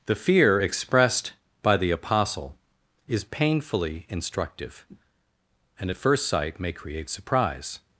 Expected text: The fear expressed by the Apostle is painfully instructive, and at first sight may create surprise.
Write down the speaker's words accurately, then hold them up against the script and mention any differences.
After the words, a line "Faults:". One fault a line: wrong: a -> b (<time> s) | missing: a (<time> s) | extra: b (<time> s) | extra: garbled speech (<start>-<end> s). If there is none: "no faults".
The fear expressed by the Apostle is painfully instructive, and at first sight may create surprise.
Faults:
no faults